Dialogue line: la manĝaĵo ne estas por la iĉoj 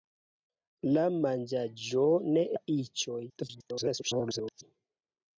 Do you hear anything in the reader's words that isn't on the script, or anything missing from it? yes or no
yes